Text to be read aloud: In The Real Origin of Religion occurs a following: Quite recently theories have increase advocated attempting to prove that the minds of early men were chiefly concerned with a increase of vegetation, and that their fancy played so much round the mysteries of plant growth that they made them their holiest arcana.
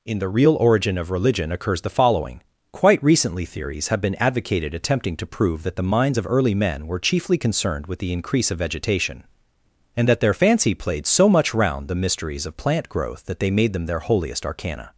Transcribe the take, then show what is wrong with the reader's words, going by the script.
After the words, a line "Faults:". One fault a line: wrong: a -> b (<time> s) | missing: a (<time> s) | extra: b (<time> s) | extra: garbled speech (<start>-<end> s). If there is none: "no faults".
In The Real Origin of Religion occurs the following: Quite recently theories have been advocated attempting to prove that the minds of early men were chiefly concerned with the increase of vegetation, and that their fancy played so much round the mysteries of plant growth that they made them their holiest arcana.
Faults:
wrong: a -> the (1.8 s)
wrong: increase -> been (4.0 s)
wrong: a -> the (8.0 s)